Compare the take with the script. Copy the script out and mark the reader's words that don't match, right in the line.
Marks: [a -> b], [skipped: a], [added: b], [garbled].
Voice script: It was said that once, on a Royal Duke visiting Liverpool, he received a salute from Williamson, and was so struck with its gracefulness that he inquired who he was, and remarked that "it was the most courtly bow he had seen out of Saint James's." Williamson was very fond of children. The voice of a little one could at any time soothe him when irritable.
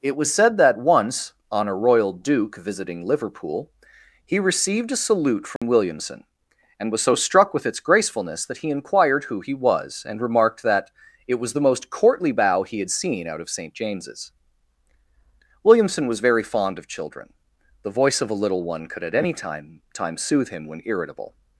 It was said that once, on a Royal Duke visiting Liverpool, he received a salute from Williamson, and was so struck with its gracefulness that he inquired who he was, and remarked that "it was the most courtly bow he had seen out of Saint James's." Williamson was very fond of children. The voice of a little one could at any time [added: time] soothe him when irritable.